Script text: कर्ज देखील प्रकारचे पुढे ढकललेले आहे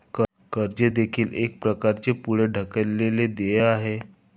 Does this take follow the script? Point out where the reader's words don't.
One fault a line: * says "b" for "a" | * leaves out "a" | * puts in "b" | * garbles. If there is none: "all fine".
* puts in "एक"
* puts in "देय"